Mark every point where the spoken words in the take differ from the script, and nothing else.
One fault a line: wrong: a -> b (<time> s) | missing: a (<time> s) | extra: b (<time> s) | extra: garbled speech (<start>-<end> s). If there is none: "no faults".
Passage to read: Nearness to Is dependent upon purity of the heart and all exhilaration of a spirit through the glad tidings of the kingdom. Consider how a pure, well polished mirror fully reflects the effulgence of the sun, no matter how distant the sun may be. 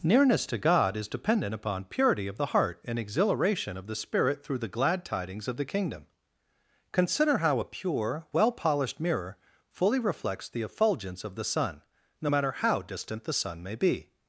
extra: God (0.6 s)
missing: all (3.0 s)
wrong: a -> the (3.9 s)